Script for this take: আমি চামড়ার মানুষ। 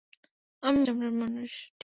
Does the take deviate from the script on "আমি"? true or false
false